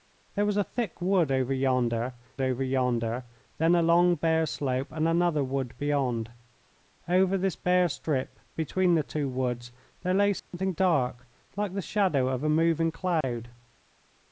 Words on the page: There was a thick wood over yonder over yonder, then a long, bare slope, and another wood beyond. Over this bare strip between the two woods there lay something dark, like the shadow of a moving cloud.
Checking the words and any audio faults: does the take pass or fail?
fail